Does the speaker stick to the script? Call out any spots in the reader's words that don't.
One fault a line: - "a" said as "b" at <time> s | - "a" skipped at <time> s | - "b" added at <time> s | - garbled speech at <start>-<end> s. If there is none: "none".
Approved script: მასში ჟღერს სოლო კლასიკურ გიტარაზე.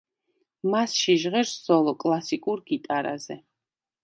none